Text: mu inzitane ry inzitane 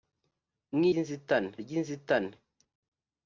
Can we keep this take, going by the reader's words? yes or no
yes